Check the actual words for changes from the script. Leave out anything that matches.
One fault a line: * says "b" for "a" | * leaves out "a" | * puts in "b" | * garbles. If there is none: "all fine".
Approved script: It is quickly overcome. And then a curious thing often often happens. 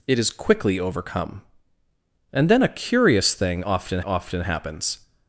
all fine